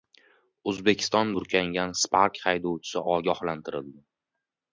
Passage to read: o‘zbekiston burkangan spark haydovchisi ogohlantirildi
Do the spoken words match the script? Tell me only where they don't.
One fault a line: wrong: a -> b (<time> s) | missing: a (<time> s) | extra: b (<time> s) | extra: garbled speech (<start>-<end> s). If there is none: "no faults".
no faults